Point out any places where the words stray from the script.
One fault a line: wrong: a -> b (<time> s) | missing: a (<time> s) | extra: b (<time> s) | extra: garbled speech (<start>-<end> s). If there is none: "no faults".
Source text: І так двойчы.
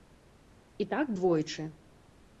no faults